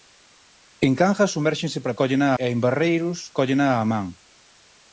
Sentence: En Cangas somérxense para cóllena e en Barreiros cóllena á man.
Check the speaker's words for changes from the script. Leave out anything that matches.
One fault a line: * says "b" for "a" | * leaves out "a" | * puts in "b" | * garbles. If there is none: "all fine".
all fine